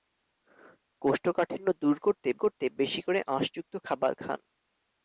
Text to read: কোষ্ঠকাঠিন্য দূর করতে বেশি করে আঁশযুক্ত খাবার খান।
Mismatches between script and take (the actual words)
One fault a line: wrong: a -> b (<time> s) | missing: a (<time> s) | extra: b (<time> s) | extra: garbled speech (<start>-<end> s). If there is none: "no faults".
extra: করতে (2.4 s)